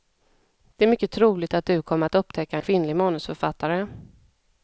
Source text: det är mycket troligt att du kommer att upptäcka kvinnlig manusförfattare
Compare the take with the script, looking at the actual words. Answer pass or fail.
pass